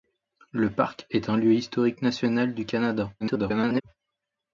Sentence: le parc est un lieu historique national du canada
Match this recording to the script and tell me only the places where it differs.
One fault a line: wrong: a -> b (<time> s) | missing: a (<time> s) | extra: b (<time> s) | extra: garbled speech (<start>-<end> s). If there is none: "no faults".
extra: garbled speech (3.2-3.8 s)